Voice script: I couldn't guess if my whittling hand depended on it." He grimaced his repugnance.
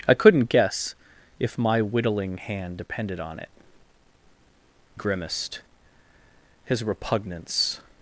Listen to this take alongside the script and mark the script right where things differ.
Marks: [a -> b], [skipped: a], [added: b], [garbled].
I couldn't guess if my whittling hand depended on it." [skipped: He] grimaced his repugnance.